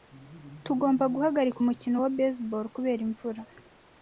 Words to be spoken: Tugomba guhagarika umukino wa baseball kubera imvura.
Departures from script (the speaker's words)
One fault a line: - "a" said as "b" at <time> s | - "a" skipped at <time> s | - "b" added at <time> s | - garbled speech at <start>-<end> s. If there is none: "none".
none